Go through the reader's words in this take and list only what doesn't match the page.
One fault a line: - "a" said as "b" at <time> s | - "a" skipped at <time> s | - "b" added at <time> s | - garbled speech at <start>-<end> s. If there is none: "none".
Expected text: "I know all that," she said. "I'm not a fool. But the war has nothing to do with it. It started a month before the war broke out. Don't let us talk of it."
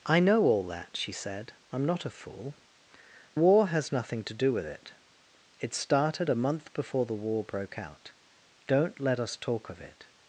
- "But the" skipped at 2.5 s